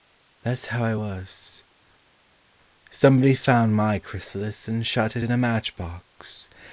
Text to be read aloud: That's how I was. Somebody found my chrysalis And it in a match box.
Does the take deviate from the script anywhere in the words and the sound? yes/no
yes